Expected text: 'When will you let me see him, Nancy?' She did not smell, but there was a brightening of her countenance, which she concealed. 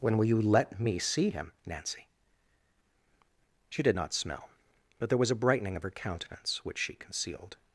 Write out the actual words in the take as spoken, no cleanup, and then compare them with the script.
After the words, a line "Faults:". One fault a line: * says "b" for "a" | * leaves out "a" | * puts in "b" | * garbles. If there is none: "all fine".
'When will you let me see him, Nancy?' She did not smell, but there was a brightening of her countenance, which she concealed.
Faults:
all fine